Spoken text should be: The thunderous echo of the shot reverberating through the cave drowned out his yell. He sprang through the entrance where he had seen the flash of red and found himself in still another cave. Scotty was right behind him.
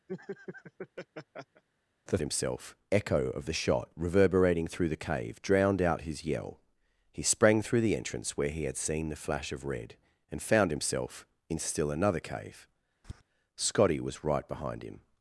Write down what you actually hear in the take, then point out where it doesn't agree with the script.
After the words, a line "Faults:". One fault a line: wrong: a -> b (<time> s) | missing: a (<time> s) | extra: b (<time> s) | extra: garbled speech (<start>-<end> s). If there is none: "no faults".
The himself echo of the shot reverberating through the cave drowned out his yell. He sprang through the entrance where he had seen the flash of red and found himself in still another cave. Scotty was right behind him.
Faults:
wrong: thunderous -> himself (2.2 s)